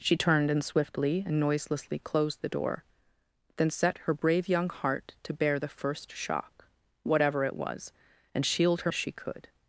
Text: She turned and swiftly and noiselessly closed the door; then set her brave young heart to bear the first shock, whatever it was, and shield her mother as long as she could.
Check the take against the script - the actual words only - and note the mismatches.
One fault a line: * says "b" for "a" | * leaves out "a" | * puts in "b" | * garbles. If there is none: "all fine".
* leaves out "mother as long"